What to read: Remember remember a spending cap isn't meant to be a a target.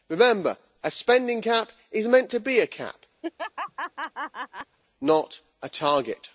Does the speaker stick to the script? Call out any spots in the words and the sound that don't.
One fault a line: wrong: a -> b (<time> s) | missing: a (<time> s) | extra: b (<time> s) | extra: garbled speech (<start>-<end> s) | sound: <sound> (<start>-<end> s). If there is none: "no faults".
missing: remember (0.6 s)
wrong: isn't -> is (1.9 s)
extra: cap not (2.7 s)
sound: laugh (3.2-4.8 s)